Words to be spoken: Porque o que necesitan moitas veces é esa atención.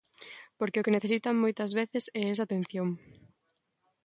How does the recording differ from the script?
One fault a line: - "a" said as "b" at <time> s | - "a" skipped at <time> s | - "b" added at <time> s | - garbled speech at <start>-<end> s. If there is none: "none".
none